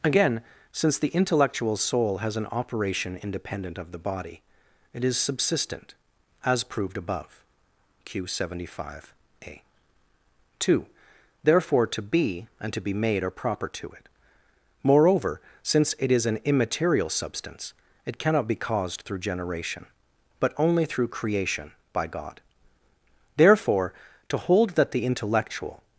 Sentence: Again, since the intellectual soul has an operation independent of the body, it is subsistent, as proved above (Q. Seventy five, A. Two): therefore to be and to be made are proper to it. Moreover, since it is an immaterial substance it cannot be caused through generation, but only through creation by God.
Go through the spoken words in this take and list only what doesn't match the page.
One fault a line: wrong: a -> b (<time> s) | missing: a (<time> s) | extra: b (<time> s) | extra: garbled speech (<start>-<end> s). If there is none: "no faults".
extra: Therefore to hold that the intellectual (23.4 s)